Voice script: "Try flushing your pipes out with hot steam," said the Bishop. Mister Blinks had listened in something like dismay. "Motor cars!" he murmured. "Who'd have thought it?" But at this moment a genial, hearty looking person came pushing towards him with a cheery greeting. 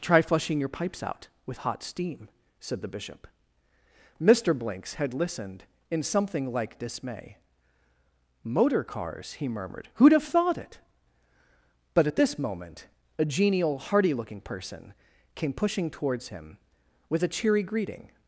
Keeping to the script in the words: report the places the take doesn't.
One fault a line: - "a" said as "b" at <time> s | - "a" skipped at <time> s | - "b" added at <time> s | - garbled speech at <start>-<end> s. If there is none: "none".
none